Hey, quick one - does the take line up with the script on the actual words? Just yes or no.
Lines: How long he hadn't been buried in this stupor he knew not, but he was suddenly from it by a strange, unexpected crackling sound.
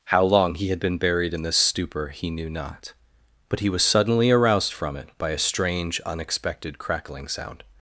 no